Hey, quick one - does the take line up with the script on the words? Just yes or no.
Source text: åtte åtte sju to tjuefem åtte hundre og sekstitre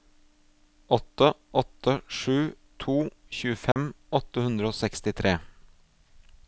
yes